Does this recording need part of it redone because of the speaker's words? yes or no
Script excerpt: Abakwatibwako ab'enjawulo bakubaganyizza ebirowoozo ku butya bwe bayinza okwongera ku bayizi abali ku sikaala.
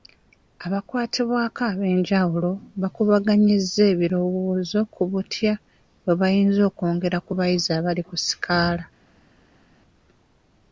no